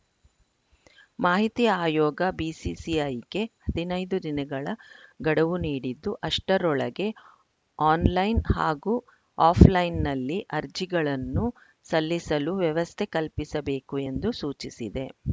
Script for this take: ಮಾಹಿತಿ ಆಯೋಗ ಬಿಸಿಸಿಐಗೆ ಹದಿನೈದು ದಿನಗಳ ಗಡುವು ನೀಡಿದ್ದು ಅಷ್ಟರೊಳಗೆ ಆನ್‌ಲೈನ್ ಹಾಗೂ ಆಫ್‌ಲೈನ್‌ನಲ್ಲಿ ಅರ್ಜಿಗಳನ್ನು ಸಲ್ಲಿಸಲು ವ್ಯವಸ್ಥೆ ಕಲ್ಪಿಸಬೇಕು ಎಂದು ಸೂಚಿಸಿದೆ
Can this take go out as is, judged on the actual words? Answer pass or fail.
pass